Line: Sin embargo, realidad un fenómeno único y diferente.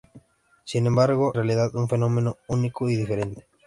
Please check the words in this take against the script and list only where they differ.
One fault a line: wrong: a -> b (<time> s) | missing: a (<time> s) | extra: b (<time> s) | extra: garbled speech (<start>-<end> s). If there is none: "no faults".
no faults